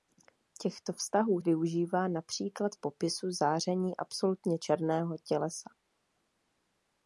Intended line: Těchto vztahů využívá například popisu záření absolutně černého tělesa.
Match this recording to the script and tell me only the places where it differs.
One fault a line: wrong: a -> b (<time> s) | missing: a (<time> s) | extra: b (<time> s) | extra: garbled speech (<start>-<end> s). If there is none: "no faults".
no faults